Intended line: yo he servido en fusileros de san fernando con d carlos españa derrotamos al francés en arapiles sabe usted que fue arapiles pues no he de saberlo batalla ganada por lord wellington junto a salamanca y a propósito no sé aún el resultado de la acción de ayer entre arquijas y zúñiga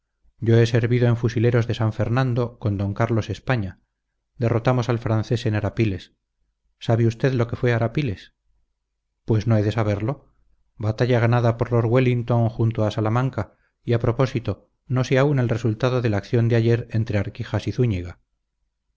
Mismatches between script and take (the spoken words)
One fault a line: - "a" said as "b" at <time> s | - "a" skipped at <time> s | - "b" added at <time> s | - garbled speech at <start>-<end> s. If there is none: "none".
- "lo" added at 7.3 s